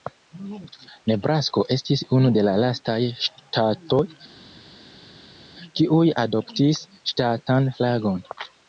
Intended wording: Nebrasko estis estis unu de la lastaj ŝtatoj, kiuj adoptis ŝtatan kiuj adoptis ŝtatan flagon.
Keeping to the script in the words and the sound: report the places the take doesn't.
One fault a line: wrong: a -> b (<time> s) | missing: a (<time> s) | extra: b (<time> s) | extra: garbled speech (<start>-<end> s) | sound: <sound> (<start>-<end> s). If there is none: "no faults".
missing: estis (2.0 s)
missing: kiuj adoptis ŝtatan (7.7 s)